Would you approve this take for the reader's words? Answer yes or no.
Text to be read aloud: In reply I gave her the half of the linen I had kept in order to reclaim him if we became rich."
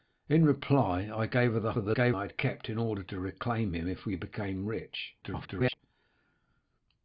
no